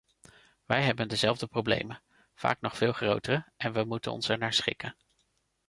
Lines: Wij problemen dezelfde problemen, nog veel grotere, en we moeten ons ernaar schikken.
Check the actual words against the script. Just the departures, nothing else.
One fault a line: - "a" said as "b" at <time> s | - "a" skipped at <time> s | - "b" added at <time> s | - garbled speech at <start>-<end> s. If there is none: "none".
- "problemen" said as "hebben" at 0.8 s
- "vaak" added at 2.3 s